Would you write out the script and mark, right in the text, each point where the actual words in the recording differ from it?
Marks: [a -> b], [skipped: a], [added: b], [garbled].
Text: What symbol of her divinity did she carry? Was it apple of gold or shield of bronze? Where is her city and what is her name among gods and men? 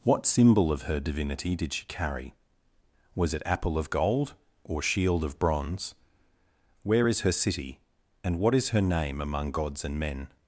What symbol of her divinity did she carry? Was it apple of gold or shield of bronze? Where is her city and what is her name among gods and men?